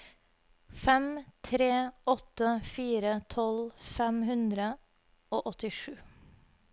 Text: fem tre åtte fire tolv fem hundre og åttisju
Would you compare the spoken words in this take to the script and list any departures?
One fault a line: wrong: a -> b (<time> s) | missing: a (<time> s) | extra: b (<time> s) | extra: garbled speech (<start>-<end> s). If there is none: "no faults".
no faults